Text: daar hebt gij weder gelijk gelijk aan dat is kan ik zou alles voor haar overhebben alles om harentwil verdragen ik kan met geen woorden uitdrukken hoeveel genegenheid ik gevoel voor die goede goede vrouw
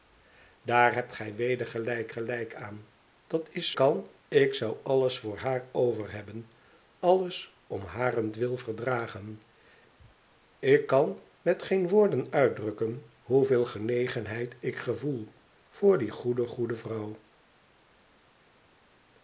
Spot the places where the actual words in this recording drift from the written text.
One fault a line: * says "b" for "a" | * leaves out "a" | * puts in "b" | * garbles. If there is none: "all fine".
all fine